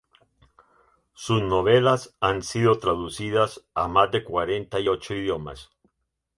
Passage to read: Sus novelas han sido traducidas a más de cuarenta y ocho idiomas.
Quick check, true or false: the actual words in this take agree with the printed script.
true